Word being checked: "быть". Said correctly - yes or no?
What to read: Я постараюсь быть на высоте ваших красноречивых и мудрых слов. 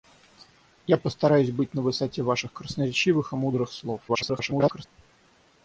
yes